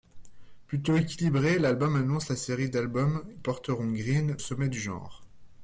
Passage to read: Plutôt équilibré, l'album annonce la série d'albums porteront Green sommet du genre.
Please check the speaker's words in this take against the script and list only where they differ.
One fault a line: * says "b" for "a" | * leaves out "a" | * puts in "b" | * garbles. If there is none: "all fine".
all fine